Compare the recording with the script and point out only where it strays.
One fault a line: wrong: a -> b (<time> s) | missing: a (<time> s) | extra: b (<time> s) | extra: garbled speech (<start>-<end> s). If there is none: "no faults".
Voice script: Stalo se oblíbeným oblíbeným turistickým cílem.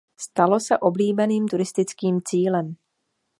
missing: oblíbeným (1.5 s)